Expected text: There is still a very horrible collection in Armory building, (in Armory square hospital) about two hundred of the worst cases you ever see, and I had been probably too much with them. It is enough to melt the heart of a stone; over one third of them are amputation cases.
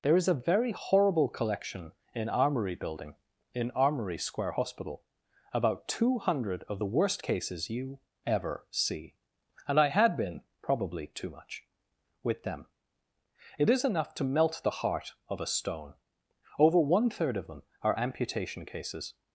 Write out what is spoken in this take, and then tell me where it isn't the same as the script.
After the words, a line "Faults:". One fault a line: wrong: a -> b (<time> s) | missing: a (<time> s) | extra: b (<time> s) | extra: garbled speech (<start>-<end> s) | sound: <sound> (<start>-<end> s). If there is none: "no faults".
There is a very horrible collection in Armory building, (in Armory square hospital) about two hundred of the worst cases you ever see, and I had been probably too much with them. It is enough to melt the heart of a stone; over one third of them are amputation cases.
Faults:
missing: still (0.3 s)